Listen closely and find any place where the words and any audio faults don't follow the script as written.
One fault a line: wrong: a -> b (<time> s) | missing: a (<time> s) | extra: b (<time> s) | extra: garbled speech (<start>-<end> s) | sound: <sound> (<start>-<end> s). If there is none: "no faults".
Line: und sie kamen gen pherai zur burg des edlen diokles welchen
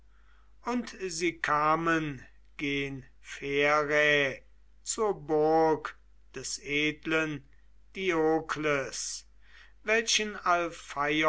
no faults